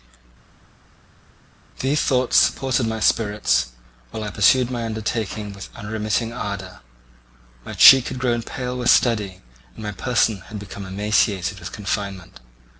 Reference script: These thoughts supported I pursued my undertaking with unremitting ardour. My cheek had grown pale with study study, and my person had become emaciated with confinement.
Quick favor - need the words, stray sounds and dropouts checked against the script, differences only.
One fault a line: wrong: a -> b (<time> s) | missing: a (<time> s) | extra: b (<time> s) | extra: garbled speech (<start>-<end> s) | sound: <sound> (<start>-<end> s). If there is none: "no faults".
extra: my spirits while (2.9 s)
missing: study (9.4 s)